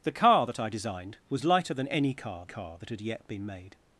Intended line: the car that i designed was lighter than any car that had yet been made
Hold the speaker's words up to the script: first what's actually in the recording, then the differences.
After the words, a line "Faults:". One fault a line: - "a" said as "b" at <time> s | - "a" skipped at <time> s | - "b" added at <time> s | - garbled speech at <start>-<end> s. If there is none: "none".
the car that i designed was lighter than any car car that had yet been made
Faults:
- "car" added at 2.4 s